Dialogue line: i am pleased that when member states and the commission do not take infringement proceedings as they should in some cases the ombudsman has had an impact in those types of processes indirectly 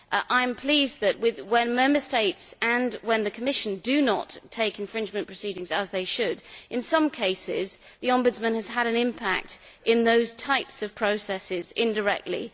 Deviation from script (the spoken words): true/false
false